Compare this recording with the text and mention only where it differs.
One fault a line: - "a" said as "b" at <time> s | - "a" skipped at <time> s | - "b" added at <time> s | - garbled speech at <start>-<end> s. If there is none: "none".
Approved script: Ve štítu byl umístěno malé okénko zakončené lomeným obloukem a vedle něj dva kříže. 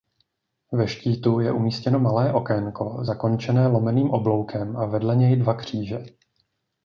- "byl" said as "je" at 1.4 s